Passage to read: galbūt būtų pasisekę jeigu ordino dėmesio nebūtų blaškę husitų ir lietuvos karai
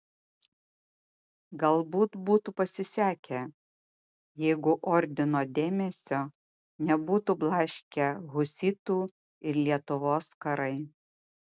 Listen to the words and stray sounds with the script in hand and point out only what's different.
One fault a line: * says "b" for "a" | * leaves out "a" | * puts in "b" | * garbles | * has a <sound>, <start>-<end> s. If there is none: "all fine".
all fine